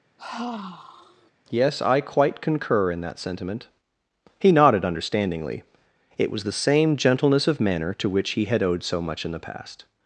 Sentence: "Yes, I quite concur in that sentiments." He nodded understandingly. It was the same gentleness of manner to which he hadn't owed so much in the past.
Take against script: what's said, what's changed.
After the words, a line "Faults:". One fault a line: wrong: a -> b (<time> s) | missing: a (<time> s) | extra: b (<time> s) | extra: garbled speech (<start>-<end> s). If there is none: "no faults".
"Yes, I quite concur in that sentiment." He nodded understandingly. It was the same gentleness of manner to which he had owed so much in the past.
Faults:
wrong: sentiments -> sentiment (3.2 s)
wrong: hadn't -> had (8.4 s)